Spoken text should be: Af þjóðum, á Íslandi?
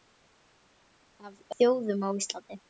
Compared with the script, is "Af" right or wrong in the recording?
right